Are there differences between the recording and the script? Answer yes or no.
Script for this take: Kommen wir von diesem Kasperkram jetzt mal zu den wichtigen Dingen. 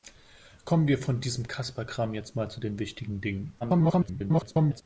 yes